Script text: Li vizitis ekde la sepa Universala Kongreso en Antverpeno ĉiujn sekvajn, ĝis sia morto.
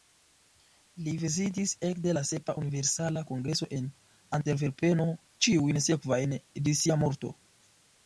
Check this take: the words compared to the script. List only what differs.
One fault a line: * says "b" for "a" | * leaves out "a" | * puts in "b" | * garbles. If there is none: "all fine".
all fine